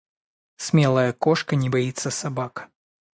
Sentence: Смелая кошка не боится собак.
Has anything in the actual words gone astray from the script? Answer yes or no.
no